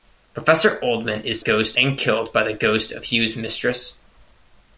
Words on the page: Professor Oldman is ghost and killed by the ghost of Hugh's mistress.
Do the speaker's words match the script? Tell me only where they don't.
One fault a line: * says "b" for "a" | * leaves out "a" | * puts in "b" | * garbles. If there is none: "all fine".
all fine